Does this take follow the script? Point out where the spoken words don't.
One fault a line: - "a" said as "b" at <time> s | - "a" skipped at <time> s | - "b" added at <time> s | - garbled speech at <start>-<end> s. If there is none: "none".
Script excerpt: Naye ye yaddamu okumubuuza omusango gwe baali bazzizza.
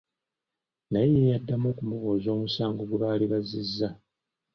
none